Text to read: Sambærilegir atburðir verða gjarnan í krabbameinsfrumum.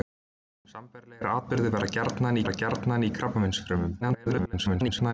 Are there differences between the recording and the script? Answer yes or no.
yes